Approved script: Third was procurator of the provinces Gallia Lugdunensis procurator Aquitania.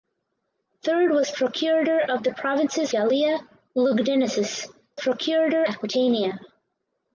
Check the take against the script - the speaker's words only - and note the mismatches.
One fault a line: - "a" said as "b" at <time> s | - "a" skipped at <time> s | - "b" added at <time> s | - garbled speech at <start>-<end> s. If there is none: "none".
none